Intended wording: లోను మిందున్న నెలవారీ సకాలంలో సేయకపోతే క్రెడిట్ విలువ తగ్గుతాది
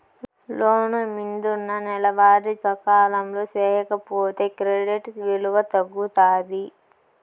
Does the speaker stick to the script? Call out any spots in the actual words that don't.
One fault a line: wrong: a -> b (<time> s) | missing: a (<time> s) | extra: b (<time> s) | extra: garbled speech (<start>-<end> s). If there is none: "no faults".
no faults